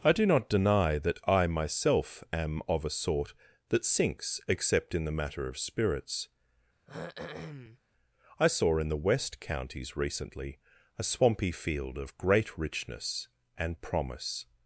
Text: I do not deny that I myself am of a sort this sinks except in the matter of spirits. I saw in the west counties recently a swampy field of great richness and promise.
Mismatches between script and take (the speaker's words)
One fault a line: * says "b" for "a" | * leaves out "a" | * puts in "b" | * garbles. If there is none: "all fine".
* says "that" for "this"